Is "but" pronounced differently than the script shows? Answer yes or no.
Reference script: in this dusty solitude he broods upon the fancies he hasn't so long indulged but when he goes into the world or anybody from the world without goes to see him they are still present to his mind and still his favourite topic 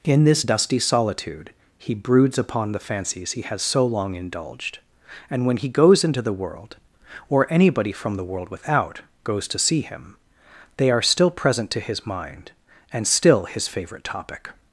yes